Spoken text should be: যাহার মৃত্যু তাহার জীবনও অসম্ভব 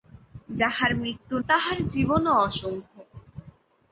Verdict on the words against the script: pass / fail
pass